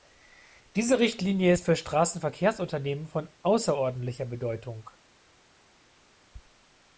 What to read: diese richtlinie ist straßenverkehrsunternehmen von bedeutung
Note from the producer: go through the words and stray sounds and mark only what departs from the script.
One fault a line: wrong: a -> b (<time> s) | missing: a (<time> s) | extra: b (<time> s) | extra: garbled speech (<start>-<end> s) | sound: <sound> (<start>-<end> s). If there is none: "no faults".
extra: für (1.6 s)
extra: außerordentlicher (3.4 s)